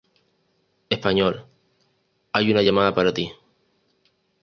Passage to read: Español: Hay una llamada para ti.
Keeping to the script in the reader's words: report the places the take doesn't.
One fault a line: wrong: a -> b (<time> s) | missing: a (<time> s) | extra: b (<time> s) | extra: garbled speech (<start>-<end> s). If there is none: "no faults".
no faults